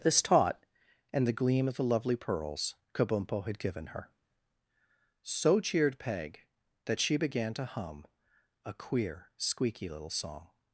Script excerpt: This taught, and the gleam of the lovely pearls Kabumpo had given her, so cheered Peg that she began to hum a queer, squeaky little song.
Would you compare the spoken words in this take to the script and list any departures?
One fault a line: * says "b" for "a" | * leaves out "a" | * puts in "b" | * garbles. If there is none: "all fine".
all fine